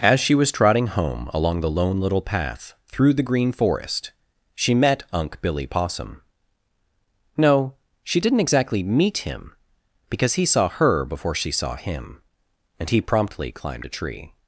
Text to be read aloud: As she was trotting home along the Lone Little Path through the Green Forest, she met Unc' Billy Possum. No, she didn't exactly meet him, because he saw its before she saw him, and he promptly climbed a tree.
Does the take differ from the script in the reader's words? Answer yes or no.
yes